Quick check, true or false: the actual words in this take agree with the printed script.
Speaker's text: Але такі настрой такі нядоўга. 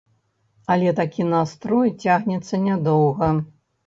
false